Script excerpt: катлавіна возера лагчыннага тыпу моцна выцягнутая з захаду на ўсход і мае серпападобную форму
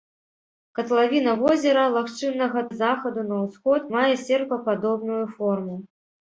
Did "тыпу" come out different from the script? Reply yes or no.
yes